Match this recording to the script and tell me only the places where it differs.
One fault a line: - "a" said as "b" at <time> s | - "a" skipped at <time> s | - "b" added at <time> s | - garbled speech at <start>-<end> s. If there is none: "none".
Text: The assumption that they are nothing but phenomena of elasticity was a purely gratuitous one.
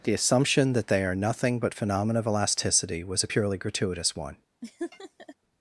none